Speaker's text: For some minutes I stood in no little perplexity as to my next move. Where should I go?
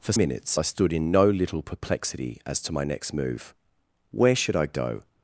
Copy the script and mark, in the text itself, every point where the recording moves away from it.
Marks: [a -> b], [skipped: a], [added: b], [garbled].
For [skipped: some] minutes I stood in no little perplexity as to my next move. Where should I go?